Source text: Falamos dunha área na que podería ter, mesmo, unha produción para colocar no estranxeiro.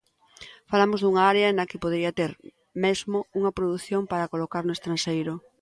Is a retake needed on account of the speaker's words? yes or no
no